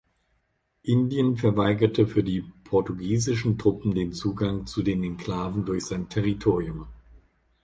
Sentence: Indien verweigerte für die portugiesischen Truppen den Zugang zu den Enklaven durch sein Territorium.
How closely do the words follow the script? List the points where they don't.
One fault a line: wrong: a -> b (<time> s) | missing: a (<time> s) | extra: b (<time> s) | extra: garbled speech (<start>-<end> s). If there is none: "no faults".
no faults